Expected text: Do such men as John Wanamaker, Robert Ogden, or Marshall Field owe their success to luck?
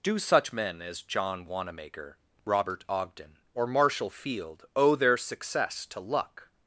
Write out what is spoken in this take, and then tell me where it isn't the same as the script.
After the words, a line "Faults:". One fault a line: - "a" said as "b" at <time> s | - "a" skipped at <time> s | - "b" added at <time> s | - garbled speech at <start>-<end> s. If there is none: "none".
Do such men as John Wanamaker, Robert Ogden, or Marshall Field owe their success to luck?
Faults:
none